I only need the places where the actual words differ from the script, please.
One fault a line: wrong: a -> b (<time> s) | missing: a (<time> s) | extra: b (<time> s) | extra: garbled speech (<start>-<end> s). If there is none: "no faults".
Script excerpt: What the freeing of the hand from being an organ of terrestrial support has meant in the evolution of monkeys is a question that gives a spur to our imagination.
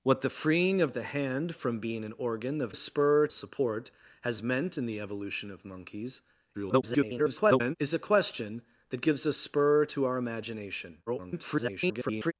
wrong: terrestrial -> spur (2.7 s)
extra: garbled speech (6.5-7.8 s)
extra: garbled speech (11.1-12.3 s)